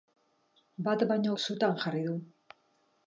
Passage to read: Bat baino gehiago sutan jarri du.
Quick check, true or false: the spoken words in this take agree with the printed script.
false